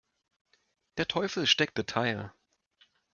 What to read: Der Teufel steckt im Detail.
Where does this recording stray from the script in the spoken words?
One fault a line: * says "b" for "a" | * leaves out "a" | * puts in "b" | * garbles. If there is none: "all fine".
* leaves out "im"